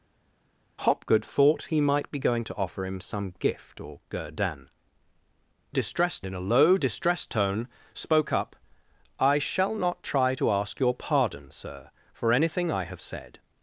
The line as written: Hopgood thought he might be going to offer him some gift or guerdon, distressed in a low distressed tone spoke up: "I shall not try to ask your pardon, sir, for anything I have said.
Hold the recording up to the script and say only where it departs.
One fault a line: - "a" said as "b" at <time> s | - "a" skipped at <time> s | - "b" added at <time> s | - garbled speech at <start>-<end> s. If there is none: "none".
none